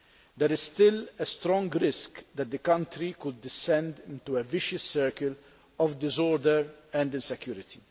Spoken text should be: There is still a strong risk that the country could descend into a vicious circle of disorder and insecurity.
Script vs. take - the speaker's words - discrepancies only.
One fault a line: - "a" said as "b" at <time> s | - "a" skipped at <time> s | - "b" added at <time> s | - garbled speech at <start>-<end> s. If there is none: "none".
none